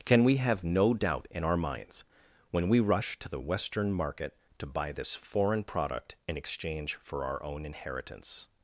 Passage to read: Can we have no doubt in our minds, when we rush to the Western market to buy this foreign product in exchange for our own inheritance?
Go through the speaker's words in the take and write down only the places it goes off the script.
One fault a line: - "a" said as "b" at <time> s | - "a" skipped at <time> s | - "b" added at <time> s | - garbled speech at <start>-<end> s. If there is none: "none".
none